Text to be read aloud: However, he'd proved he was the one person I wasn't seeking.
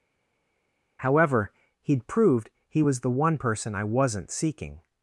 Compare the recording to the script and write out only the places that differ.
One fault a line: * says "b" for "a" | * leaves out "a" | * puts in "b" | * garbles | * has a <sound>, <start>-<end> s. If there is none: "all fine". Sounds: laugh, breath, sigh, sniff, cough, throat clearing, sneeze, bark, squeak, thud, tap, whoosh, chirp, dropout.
all fine